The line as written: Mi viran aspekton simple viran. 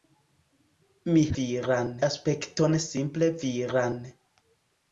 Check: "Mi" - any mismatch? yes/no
no